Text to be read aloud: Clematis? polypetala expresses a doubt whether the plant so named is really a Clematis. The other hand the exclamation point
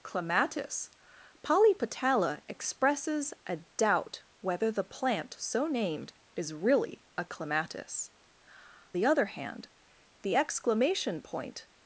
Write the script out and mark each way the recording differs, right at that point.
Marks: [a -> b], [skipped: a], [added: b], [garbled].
Clematis? polypetala expresses a doubt whether the plant so named is really a Clematis. The other hand the exclamation point